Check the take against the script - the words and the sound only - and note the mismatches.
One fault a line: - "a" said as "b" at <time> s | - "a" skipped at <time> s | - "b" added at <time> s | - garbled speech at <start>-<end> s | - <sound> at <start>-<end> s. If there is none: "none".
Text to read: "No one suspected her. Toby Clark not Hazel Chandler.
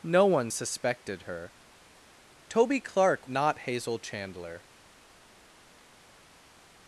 none